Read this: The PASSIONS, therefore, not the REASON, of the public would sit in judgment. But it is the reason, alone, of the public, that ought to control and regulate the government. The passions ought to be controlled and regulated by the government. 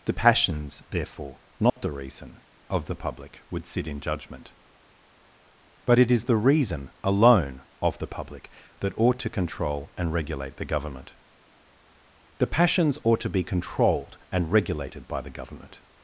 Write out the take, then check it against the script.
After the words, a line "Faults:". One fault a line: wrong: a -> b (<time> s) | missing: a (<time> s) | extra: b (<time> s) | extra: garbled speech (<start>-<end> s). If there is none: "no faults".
The PASSIONS, therefore, not the REASON, of the public would sit in judgment. But it is the reason, alone, of the public, that ought to control and regulate the government. The passions ought to be controlled and regulated by the government.
Faults:
no faults